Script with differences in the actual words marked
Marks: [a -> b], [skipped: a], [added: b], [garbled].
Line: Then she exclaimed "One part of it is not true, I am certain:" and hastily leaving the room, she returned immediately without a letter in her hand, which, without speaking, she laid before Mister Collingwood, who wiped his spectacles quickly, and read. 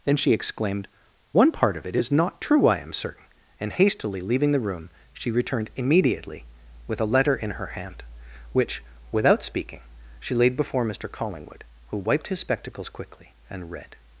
Then she exclaimed "One part of it is not true, I am certain:" and hastily leaving the room, she returned immediately [without -> with] a letter in her hand, which, without speaking, she laid before Mister Collingwood, who wiped his spectacles quickly, and read.